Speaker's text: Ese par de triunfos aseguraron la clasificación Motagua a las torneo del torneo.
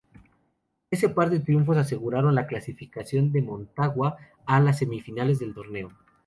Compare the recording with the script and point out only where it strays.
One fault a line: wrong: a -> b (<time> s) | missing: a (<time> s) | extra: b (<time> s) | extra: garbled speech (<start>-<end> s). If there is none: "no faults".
extra: de (3.3 s)
wrong: torneo -> semifinales (4.8 s)